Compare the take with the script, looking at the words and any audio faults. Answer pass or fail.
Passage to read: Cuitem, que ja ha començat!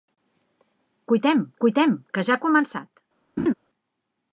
fail